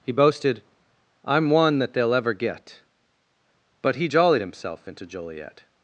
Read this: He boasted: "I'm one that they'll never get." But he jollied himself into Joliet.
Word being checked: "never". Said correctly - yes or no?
no